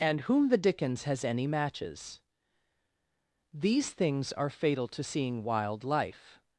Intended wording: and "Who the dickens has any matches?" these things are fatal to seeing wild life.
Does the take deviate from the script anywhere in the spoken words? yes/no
yes